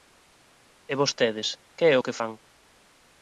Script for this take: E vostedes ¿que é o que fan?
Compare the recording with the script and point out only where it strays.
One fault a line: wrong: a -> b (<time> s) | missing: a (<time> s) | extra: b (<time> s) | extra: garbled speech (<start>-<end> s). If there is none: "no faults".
no faults